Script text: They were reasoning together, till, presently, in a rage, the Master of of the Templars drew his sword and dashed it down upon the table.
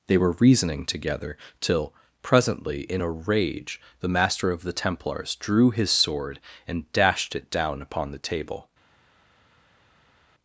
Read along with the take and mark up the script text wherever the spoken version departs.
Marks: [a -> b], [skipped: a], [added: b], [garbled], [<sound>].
They were reasoning together, till, presently, in a rage, the Master of [skipped: of] the Templars drew his sword and dashed it down upon the table.